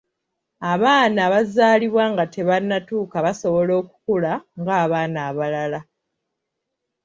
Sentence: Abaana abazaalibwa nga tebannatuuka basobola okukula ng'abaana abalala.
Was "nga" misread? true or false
false